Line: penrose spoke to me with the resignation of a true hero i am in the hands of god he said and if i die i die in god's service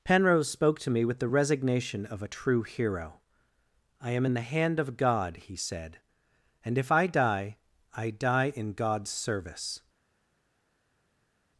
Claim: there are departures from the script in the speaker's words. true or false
true